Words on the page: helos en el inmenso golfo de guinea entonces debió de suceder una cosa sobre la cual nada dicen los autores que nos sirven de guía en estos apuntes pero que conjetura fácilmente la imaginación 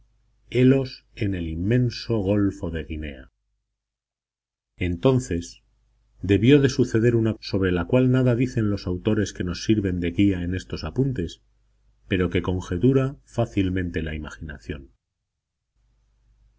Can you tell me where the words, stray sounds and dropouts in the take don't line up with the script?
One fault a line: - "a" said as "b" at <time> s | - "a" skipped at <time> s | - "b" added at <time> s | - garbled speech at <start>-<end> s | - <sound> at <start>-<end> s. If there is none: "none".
- "cosa" skipped at 7.3 s